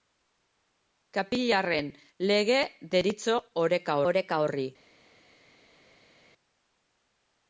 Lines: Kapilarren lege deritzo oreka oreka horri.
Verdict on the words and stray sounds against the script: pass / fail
pass